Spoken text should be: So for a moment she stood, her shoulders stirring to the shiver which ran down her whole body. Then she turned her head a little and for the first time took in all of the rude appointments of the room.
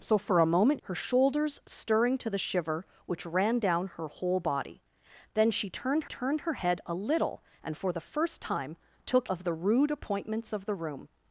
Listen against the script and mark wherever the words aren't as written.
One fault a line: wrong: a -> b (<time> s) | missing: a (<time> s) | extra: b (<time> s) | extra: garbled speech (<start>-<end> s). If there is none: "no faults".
missing: she stood (0.8 s)
extra: turned (6.1 s)
missing: in all (9.3 s)